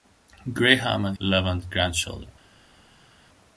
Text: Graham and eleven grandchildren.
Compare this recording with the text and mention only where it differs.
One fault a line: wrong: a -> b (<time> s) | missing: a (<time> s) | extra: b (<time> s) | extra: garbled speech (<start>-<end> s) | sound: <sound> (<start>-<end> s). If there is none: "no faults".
no faults